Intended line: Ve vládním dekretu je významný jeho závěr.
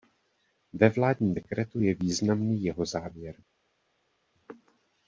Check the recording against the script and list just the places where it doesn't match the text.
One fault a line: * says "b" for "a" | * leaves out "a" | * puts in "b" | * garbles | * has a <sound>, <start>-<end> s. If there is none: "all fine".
all fine